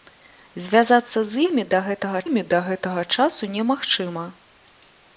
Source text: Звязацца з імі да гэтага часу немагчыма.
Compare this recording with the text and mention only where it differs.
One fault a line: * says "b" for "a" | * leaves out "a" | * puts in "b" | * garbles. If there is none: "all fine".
* puts in "імі да гэтага"